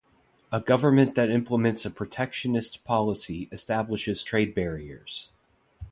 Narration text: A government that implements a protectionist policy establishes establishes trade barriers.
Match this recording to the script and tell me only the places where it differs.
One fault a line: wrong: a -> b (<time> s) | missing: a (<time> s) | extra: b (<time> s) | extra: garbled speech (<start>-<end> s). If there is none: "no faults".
missing: establishes (4.2 s)